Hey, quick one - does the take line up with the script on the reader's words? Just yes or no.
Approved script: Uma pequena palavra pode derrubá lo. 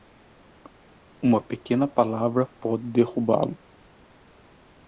yes